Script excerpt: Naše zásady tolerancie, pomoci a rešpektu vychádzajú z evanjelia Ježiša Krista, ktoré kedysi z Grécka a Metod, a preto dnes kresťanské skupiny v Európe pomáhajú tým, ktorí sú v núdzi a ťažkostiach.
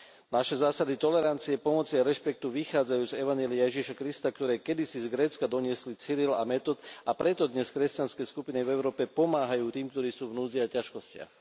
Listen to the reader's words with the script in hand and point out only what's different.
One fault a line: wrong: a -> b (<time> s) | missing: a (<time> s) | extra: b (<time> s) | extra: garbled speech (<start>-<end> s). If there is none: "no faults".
extra: doniesli Cyril (5.5 s)